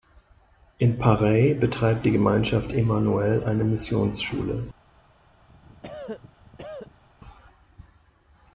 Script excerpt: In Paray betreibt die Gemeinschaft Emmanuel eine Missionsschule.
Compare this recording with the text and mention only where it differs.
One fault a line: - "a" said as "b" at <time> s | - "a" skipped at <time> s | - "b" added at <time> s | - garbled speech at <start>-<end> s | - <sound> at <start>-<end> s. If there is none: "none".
- cough at 5.5-7.0 s